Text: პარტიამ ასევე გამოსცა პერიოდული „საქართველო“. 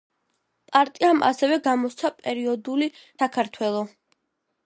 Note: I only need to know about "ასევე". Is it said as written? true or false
true